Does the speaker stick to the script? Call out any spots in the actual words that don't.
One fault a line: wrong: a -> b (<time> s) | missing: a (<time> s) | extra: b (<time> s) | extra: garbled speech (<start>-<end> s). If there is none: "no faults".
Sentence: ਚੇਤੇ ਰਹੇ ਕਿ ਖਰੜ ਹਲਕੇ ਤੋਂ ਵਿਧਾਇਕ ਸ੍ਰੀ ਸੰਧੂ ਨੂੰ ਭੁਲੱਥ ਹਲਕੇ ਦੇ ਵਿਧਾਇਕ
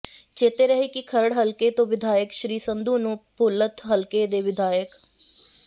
no faults